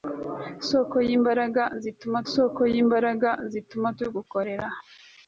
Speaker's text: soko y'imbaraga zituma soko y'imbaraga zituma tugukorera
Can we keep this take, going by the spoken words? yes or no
yes